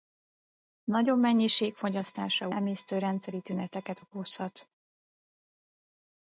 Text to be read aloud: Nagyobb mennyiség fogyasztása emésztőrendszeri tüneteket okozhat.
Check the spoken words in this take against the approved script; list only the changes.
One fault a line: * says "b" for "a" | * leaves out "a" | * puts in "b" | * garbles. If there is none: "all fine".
all fine